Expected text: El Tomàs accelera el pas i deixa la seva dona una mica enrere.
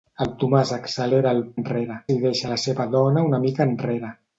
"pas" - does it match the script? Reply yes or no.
no